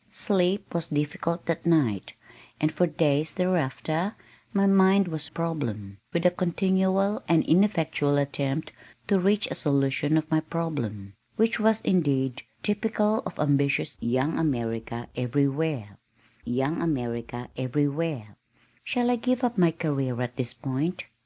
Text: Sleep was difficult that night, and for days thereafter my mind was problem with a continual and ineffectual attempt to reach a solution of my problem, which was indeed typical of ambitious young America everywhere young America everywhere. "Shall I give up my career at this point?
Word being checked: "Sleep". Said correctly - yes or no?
yes